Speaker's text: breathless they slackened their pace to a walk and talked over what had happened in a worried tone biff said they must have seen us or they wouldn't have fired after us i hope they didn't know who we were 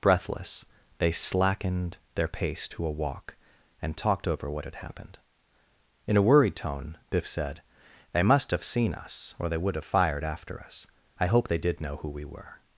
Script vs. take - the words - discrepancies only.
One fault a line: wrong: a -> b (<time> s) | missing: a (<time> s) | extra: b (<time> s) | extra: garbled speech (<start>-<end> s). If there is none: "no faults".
wrong: wouldn't -> would (9.6 s)
wrong: didn't -> did (11.6 s)